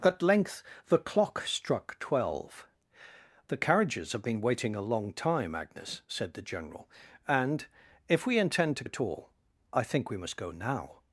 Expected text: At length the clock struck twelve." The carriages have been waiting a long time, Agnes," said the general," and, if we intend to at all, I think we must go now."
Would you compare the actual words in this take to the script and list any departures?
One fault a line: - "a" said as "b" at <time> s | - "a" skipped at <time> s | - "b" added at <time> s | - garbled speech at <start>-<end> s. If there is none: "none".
none